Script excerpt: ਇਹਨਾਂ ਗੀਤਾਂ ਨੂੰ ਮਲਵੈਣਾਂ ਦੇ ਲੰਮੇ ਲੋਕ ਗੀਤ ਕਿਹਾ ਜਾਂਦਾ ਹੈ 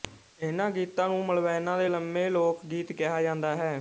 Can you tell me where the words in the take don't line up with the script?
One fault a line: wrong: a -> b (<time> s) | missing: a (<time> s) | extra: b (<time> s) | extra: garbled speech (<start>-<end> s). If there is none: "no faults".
no faults